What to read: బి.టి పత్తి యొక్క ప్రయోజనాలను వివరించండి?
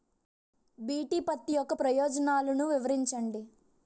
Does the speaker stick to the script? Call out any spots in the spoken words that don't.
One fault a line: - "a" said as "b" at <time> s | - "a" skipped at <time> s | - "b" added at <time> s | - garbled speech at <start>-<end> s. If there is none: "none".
none